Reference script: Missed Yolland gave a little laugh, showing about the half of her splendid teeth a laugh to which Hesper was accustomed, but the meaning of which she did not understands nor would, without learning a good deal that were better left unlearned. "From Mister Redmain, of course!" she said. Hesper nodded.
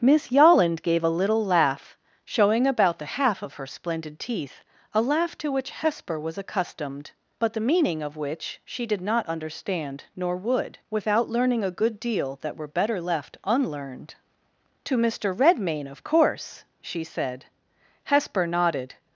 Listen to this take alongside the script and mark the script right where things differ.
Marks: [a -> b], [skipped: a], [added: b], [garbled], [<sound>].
[Missed -> Miss] Yolland gave a little laugh, showing about the half of her splendid teeth a laugh to which Hesper was accustomed, but the meaning of which she did not [understands -> understand] nor would, without learning a good deal that were better left unlearned. ["From -> To] Mister Redmain, of course!" she said. Hesper nodded.